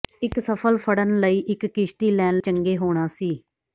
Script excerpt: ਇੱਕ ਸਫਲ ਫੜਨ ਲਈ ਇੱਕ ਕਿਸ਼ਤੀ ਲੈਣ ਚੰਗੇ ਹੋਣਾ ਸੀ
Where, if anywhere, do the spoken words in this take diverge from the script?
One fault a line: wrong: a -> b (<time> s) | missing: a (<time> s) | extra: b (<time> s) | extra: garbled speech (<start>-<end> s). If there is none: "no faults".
no faults